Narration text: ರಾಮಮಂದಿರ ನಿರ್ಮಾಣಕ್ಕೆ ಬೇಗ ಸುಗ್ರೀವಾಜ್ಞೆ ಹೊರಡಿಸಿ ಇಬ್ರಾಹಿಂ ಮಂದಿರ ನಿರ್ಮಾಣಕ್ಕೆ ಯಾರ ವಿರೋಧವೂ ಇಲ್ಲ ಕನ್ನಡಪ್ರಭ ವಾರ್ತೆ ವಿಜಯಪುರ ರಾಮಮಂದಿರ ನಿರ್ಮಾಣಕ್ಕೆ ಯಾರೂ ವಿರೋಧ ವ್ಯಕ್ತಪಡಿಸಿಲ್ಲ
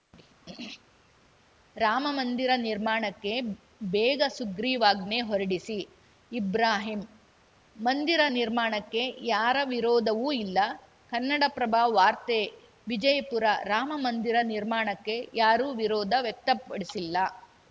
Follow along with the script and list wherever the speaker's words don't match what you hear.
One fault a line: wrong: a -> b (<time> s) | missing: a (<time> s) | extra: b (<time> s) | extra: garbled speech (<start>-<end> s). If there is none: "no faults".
no faults